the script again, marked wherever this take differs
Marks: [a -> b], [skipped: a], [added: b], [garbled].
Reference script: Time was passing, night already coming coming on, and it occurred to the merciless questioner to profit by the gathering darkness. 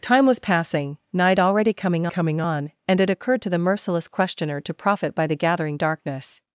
Time was passing, night already coming coming on, and it occurred to the merciless questioner to profit by the gathering darkness.